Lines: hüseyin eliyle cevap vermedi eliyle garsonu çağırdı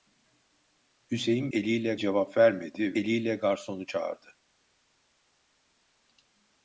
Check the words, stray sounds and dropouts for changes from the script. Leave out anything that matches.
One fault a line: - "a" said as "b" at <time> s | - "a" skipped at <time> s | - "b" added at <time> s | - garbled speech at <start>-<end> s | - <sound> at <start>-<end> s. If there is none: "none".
none